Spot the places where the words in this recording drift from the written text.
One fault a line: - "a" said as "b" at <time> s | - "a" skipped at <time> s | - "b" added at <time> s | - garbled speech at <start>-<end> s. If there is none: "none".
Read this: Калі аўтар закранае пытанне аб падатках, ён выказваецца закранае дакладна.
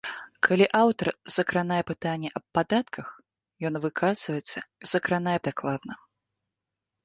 none